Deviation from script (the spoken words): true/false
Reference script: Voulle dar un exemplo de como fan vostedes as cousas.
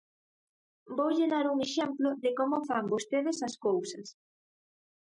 false